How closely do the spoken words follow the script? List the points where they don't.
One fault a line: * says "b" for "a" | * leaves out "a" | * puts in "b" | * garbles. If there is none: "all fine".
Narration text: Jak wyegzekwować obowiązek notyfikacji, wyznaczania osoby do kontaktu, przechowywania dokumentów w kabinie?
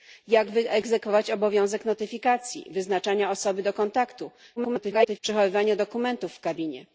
* garbles